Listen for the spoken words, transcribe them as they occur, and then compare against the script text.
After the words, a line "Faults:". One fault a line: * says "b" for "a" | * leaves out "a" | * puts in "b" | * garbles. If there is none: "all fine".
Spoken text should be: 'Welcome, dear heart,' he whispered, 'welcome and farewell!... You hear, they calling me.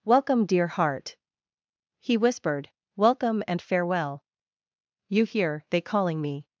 'Welcome, dear heart,' he whispered, 'welcome and farewell!... You hear, they calling me.
Faults:
all fine